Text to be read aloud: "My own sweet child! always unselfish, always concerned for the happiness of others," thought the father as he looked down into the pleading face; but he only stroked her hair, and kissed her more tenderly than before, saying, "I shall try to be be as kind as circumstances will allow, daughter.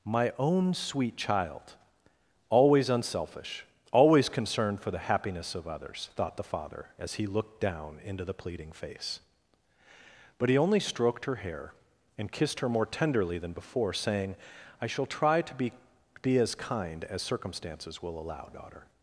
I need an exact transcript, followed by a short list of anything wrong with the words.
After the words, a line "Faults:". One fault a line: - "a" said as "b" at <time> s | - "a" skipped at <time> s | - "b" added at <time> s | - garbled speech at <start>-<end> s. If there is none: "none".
"My own sweet child! always unselfish, always concerned for the happiness of others," thought the father as he looked down into the pleading face; but he only stroked her hair, and kissed her more tenderly than before, saying, "I shall try to be be as kind as circumstances will allow, daughter.
Faults:
none